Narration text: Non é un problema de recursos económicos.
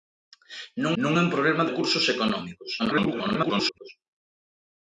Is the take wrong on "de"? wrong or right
wrong